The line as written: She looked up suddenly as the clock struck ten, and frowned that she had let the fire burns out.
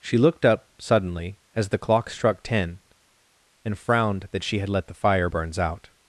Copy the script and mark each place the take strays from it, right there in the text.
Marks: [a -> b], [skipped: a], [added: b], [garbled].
She looked up suddenly as the clock struck ten, and frowned that she had let the fire burns out.